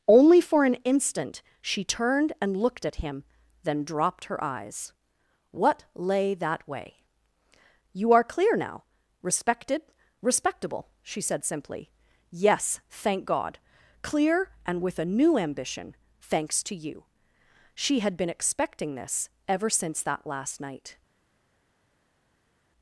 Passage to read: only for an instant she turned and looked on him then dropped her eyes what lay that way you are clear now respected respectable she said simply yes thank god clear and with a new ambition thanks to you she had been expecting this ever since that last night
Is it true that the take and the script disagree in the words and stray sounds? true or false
true